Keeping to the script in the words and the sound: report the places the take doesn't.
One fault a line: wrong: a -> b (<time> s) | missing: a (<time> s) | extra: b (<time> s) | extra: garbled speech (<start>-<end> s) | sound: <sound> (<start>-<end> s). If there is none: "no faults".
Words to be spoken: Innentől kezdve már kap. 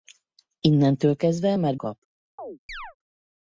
sound: chirp (2.4-3.0 s)